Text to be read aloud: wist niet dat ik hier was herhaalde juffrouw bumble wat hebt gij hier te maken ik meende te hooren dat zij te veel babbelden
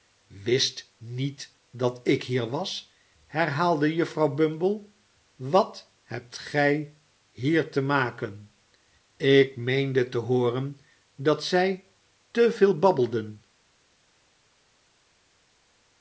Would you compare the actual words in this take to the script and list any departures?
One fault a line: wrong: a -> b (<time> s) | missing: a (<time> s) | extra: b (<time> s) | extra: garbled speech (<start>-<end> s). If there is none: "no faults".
no faults